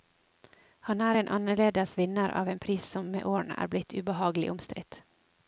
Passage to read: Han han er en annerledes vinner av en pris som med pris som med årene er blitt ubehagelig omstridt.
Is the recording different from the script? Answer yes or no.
yes